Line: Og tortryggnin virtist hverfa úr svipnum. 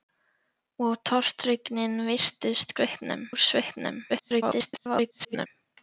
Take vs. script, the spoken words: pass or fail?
fail